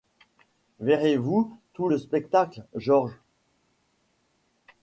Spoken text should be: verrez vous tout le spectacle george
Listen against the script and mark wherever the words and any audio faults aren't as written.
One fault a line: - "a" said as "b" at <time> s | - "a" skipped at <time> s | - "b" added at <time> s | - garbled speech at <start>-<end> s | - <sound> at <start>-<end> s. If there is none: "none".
none